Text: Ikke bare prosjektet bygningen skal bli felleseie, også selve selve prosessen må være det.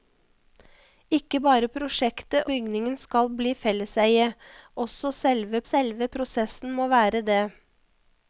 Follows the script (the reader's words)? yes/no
yes